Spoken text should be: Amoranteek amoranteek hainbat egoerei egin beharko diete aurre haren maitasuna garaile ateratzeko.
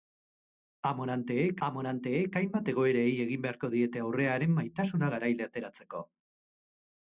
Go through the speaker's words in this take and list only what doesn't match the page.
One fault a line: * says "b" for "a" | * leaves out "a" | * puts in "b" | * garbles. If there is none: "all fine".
all fine